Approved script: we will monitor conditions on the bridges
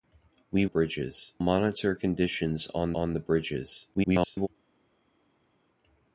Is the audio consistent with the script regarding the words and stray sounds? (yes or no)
no